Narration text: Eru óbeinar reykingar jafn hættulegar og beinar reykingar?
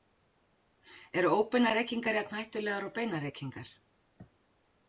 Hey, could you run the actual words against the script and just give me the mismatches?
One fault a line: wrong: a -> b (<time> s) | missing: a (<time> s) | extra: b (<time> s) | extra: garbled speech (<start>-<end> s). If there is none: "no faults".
no faults